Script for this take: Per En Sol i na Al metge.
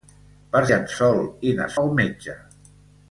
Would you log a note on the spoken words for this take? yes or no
no